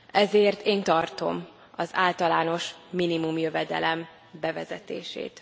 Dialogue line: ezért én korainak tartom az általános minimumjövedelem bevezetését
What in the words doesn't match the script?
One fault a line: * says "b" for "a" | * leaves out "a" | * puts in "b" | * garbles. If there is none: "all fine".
* leaves out "korainak"